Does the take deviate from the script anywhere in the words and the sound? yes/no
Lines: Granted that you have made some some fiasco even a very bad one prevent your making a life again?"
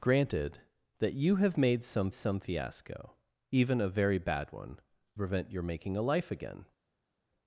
no